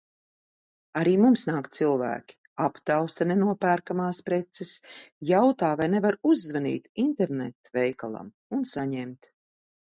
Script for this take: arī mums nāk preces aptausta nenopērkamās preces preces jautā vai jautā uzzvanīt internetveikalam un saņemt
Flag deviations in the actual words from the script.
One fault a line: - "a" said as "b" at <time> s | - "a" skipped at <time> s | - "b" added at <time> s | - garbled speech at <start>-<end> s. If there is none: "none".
- "preces" said as "cilvēki" at 1.8 s
- "preces" skipped at 4.7 s
- "jautā" said as "nevar" at 6.0 s